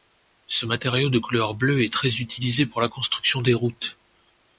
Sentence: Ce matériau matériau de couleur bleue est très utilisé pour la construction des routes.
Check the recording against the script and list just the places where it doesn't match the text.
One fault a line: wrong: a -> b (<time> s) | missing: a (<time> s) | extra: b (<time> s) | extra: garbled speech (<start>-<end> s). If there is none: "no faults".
missing: matériau (1.1 s)